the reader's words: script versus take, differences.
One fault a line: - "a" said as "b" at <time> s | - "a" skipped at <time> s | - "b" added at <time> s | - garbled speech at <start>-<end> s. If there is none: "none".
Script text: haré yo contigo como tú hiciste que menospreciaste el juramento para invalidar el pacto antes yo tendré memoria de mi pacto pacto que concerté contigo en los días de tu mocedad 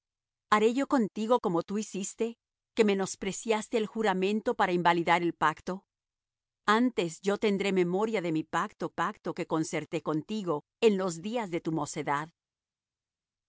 none